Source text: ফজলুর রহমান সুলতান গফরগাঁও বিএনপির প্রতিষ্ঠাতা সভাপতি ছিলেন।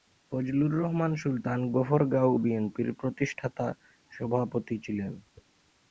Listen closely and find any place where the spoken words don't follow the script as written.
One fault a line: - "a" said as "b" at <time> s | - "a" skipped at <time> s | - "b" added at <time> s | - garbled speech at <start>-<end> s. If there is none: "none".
none